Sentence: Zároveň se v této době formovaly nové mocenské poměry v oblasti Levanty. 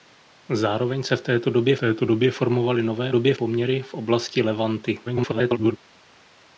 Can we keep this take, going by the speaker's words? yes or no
no